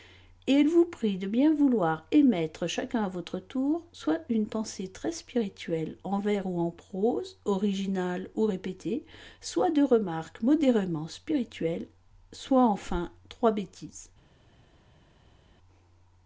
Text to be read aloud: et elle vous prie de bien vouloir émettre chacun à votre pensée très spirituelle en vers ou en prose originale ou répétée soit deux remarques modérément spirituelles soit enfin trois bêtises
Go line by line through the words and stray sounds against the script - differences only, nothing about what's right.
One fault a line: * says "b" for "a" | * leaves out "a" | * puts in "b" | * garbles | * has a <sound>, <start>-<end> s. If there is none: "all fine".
* puts in "tour soit une"